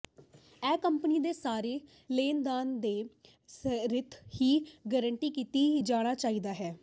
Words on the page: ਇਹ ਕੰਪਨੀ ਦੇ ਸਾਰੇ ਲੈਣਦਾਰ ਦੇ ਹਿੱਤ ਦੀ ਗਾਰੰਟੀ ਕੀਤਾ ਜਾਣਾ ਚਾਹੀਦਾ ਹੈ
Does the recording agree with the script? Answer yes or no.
yes